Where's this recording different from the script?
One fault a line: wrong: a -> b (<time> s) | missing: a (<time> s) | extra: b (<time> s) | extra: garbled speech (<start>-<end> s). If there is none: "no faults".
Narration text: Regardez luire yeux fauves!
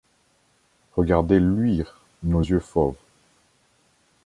extra: nos (2.2 s)